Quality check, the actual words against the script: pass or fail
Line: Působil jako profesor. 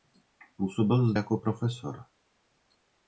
pass